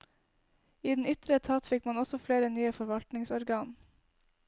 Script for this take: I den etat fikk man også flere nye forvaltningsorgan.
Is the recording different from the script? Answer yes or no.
yes